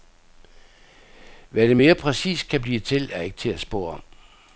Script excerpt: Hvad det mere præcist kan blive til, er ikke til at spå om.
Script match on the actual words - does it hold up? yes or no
yes